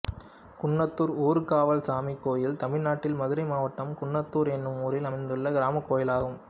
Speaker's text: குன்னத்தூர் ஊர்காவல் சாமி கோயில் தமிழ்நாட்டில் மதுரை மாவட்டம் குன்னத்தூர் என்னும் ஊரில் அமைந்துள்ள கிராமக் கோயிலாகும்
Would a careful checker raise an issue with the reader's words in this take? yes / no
no